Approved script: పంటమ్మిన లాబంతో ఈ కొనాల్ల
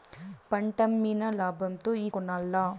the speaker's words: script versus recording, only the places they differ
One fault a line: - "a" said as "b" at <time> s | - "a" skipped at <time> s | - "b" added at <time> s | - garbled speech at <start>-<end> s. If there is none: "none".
none